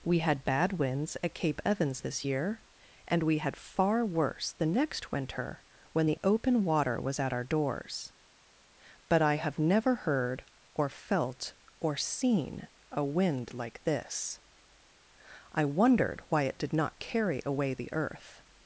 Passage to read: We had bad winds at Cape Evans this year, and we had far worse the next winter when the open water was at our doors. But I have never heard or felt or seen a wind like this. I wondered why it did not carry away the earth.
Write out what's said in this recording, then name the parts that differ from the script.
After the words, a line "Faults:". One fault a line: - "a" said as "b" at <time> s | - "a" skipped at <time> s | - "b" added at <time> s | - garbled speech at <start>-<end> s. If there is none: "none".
We had bad winds at Cape Evans this year, and we had far worse the next winter when the open water was at our doors. But I have never heard or felt or seen a wind like this. I wondered why it did not carry away the earth.
Faults:
none